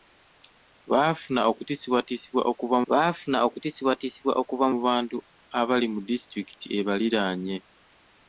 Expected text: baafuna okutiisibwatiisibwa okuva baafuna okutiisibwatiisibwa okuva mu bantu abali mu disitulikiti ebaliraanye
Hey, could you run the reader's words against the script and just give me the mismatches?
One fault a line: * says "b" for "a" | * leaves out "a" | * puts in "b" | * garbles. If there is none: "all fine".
all fine